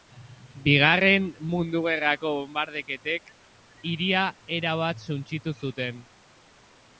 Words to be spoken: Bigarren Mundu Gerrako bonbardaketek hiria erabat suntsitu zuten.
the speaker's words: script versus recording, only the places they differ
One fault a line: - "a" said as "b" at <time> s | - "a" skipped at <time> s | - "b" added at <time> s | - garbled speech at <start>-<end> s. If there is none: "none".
none